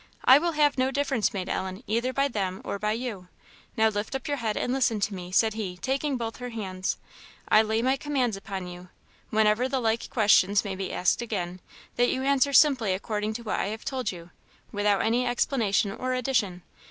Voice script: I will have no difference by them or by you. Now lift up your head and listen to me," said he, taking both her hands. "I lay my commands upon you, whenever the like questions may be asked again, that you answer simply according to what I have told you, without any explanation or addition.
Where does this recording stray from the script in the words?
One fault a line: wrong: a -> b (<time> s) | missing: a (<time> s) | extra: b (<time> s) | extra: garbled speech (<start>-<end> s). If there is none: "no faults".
extra: made Ellen either (1.3 s)